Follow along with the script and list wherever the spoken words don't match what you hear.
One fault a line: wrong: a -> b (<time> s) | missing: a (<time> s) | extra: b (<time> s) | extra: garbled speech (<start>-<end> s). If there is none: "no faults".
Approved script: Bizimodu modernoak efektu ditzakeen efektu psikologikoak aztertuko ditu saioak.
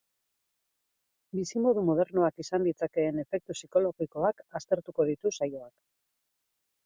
wrong: efektu -> izan (2.4 s)